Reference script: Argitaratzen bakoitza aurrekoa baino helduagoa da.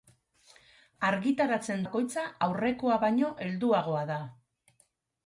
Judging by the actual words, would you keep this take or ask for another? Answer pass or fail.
pass